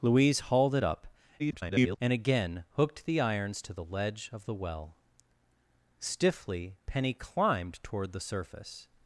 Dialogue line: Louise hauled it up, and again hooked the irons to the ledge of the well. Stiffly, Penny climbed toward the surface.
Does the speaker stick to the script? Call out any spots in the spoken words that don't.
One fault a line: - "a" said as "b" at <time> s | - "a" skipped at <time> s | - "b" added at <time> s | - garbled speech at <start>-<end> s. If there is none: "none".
- garbled speech at 1.4-2.0 s